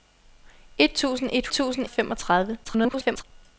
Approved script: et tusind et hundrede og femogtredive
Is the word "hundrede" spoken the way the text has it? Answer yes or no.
no